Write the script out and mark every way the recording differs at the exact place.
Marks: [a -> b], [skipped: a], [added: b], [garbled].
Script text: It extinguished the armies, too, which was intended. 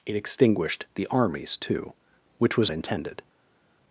It extinguished the armies, too, which was intended.